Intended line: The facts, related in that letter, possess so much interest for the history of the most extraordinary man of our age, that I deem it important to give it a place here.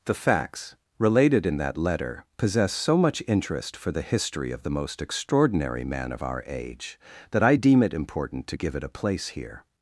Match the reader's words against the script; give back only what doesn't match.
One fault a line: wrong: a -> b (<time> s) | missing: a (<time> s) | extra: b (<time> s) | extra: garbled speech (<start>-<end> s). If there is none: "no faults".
no faults